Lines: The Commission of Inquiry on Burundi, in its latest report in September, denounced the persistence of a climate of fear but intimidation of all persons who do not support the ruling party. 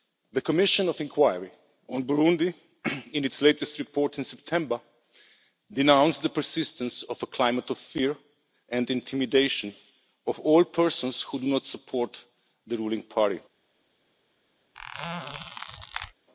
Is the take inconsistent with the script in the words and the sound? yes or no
yes